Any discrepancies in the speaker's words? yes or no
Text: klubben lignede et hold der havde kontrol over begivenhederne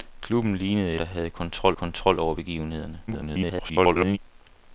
yes